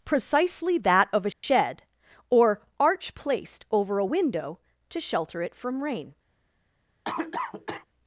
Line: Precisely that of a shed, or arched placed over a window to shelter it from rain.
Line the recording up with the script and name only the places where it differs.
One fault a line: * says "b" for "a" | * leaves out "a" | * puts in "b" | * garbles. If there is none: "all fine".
* says "arch" for "arched"